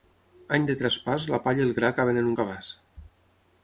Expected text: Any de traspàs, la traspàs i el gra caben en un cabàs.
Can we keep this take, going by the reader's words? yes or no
no